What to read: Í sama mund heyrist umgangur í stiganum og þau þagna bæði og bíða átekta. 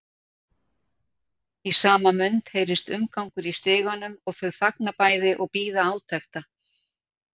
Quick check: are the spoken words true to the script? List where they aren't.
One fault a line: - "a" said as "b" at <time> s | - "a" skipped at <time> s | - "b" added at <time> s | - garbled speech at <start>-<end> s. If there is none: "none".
none